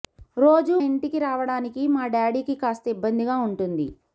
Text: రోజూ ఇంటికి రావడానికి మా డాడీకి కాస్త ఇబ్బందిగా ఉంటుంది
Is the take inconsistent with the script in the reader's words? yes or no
no